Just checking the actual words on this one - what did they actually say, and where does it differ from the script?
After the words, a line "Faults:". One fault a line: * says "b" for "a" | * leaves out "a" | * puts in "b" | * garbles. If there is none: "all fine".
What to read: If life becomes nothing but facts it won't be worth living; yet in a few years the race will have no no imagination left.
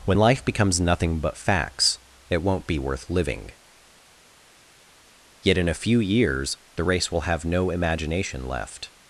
When life becomes nothing but facts it won't be worth living; yet in a few years the race will have no imagination left.
Faults:
* says "When" for "If"
* leaves out "no"